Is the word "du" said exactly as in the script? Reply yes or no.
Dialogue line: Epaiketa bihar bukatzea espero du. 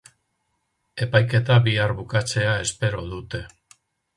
no